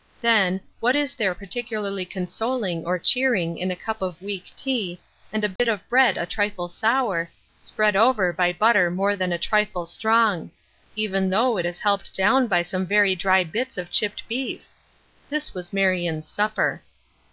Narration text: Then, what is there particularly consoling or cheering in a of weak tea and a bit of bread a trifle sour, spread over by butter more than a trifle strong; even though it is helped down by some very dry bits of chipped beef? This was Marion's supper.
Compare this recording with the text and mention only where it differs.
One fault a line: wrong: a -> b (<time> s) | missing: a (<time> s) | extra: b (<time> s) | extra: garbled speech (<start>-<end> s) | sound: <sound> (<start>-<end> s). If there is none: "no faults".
extra: cup (3.8 s)
sound: dropout (5.6-5.6 s)